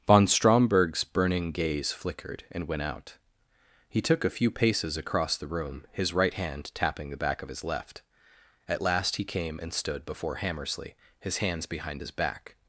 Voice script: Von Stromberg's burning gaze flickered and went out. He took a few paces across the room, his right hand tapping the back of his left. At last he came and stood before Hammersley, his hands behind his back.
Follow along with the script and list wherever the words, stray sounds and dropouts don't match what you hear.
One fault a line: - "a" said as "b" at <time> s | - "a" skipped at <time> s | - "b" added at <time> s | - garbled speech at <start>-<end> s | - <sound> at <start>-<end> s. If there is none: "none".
none